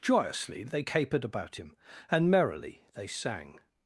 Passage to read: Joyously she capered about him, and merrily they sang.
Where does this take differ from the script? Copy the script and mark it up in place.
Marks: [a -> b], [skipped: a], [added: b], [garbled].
Joyously [she -> they] capered about him, and merrily they sang.